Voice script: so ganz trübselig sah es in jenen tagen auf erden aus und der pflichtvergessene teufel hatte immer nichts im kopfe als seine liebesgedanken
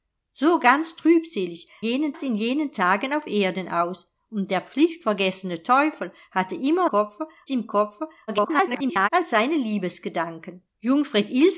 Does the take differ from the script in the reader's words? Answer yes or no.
yes